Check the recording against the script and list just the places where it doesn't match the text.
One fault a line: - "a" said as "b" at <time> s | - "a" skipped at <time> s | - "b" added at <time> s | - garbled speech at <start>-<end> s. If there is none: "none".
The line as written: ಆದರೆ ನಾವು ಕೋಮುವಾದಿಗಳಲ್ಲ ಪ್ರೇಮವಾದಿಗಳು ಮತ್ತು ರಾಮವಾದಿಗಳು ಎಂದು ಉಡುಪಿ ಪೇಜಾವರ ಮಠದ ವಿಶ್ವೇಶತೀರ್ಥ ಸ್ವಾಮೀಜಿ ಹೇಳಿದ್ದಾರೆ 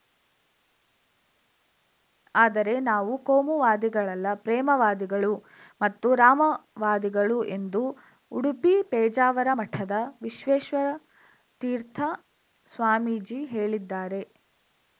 none